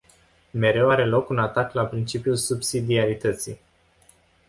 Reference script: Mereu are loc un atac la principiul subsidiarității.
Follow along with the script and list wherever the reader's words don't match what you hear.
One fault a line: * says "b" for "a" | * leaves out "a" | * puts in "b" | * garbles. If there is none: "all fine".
all fine